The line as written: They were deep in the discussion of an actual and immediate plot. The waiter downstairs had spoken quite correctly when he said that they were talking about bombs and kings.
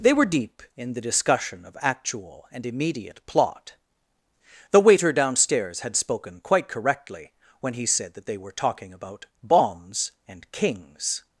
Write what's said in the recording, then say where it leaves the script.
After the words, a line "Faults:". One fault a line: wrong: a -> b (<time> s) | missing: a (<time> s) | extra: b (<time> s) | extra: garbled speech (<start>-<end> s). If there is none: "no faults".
They were deep in the discussion of actual and immediate plot. The waiter downstairs had spoken quite correctly when he said that they were talking about bombs and kings.
Faults:
missing: an (1.8 s)